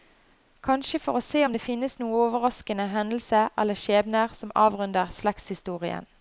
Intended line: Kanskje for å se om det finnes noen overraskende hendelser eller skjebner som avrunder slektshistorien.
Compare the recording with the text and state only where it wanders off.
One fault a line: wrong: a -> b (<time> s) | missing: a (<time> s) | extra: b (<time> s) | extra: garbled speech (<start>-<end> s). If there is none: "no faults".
no faults